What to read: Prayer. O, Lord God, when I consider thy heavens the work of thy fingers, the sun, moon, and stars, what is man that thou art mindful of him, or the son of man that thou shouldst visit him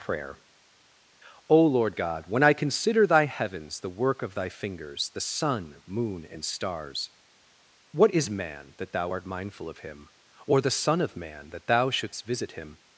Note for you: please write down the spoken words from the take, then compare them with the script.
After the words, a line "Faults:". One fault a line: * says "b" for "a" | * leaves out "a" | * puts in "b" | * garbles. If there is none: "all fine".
Prayer. O, Lord God, when I consider thy heavens the work of thy fingers, the sun, moon, and stars, what is man that thou art mindful of him, or the son of man that thou shouldst visit him
Faults:
all fine